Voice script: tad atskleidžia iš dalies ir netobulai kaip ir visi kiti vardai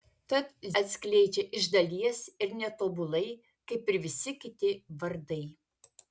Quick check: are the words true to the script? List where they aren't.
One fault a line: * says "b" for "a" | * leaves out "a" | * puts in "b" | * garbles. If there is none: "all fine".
all fine